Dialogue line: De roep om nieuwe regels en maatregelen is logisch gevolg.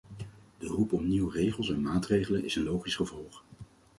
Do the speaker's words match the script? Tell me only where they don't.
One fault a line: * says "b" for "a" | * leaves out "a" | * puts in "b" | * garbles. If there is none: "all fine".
* puts in "een"